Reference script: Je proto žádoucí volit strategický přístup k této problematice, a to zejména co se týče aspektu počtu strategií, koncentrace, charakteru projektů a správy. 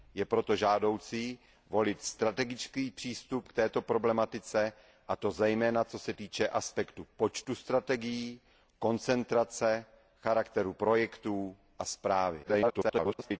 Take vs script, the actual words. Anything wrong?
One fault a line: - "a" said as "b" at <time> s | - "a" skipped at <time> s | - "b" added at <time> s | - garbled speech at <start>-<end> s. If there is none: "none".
- garbled speech at 12.4-13.4 s